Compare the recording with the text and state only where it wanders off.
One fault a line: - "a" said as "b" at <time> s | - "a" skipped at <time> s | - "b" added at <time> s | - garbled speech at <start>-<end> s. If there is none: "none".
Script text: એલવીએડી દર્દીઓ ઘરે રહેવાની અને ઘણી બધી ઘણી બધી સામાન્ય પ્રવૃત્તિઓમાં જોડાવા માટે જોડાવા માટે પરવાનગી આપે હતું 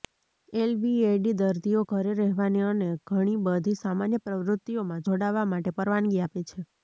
- "ઘણી બધી" skipped at 3.8 s
- "જોડાવા માટે" skipped at 5.7 s
- "હતું" said as "છે" at 6.5 s